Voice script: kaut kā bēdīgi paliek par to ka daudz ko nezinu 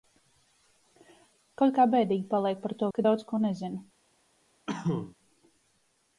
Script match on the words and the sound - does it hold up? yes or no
no